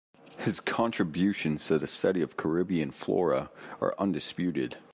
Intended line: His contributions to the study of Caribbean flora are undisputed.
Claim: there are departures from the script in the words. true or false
false